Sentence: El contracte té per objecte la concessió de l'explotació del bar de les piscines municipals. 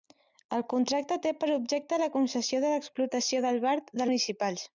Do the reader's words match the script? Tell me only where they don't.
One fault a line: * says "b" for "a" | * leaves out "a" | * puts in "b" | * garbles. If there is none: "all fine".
* leaves out "les piscines"